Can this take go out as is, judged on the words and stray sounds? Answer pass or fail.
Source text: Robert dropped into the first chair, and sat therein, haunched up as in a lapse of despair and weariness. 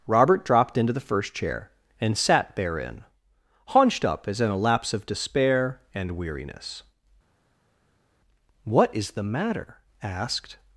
fail